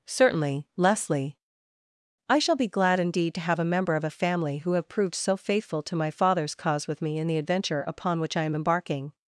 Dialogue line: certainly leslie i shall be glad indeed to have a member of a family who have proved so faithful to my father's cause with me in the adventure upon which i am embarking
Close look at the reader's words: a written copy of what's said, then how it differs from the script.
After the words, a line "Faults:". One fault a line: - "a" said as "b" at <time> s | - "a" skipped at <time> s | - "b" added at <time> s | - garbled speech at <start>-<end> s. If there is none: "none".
certainly leslie i shall be glad indeed to have a member of a family who have proved so faithful to my father's cause with me in the adventure upon which i am embarking
Faults:
none